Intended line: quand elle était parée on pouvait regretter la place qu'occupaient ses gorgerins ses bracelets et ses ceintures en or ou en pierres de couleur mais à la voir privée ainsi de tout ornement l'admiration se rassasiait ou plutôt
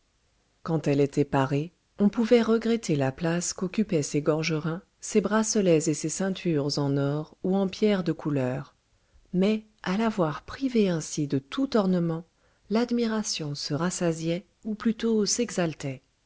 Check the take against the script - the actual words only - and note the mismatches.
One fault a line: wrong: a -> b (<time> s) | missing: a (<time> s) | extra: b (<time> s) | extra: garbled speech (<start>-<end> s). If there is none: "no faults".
no faults